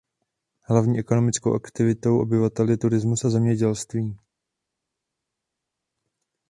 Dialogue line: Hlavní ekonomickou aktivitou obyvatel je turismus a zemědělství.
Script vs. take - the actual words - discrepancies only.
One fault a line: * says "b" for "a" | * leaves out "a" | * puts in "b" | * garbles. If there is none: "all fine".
all fine